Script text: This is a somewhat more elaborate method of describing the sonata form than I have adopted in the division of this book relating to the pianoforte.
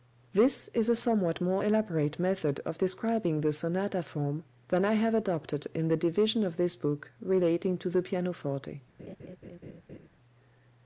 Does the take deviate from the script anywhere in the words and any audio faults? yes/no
yes